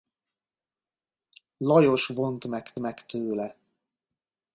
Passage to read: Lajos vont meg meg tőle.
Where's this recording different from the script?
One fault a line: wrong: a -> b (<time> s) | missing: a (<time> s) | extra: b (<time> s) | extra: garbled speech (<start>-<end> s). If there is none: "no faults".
no faults